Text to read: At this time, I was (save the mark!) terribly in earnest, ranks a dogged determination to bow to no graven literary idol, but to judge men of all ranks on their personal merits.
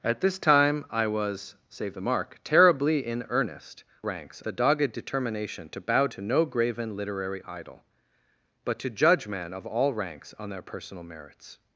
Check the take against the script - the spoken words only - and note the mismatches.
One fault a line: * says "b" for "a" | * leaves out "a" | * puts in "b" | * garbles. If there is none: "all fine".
all fine